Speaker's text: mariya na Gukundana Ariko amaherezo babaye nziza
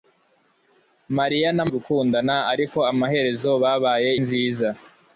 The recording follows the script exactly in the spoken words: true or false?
true